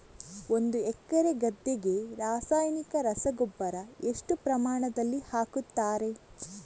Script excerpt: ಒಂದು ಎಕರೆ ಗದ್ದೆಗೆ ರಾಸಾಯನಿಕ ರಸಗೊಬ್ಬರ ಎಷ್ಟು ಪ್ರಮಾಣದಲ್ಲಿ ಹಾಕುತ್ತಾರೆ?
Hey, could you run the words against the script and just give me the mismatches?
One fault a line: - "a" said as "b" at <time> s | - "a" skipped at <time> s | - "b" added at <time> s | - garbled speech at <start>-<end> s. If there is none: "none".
none